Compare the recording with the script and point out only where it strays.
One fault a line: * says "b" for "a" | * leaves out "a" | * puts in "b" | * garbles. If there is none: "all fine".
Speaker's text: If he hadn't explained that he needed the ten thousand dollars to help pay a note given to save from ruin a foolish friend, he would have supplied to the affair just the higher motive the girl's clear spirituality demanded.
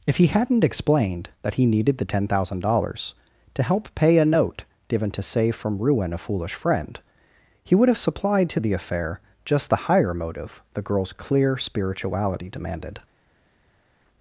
all fine